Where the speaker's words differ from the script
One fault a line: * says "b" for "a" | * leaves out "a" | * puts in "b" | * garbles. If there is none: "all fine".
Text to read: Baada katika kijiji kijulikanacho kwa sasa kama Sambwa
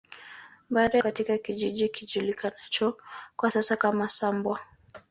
all fine